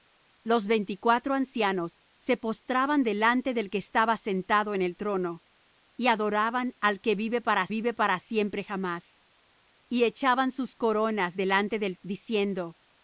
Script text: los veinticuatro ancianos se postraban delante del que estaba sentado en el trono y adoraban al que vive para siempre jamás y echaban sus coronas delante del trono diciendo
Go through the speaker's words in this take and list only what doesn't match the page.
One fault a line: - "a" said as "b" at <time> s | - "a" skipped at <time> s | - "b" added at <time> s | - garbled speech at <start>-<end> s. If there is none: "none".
- "vive para" added at 7.7 s
- "trono" skipped at 12.0 s